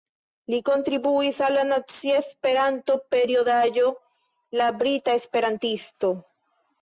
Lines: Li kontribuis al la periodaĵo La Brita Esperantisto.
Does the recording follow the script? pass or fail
fail